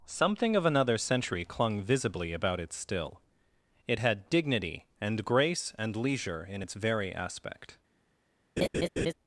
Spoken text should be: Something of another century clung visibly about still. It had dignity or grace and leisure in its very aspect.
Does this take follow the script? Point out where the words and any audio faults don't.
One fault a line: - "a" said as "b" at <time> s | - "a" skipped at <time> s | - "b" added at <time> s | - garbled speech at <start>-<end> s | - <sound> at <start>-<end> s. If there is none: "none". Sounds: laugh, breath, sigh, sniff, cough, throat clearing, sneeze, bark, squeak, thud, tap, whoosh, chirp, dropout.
- "it" added at 2.6 s
- "or" said as "and" at 5.0 s
- laugh at 8.6-9.1 s